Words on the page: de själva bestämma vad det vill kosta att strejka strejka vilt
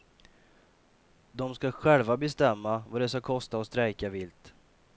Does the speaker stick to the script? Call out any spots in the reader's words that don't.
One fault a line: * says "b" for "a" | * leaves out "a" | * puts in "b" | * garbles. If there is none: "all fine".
* puts in "ska"
* says "ska" for "vill"
* leaves out "strejka"